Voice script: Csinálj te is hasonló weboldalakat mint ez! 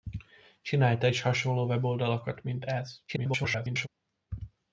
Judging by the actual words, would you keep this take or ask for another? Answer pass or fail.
fail